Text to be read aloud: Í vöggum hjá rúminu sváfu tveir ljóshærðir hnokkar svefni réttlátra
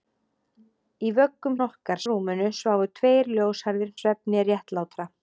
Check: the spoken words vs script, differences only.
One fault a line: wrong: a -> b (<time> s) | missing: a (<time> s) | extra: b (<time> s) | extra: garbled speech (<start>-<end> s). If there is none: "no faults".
wrong: hjá -> hnokkar (1.6 s)
missing: hnokkar (3.9 s)